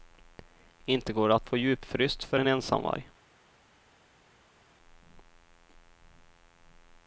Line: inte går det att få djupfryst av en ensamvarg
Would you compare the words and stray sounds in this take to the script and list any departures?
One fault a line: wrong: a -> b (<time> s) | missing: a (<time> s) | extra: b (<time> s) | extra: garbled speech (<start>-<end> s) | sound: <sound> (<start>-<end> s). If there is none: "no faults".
wrong: av -> för (2.2 s)